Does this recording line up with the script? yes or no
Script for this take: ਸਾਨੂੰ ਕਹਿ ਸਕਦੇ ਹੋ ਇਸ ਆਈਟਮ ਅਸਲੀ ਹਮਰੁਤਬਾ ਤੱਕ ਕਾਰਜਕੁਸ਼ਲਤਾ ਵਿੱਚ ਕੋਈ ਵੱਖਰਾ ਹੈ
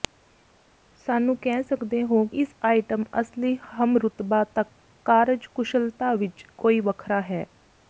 yes